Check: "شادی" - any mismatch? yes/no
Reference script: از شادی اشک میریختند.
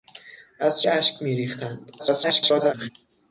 yes